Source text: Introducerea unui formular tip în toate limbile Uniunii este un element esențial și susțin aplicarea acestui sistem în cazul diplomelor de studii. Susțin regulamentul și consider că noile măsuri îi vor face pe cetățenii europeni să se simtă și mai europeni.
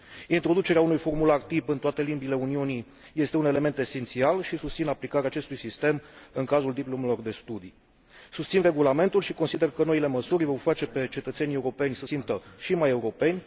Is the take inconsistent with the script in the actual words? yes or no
yes